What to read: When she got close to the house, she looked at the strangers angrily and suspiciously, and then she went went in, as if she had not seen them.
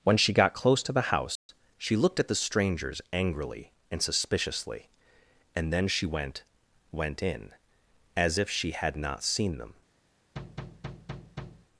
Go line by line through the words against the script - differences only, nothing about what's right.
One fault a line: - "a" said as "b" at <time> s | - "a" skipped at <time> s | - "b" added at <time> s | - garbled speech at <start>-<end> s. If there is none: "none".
none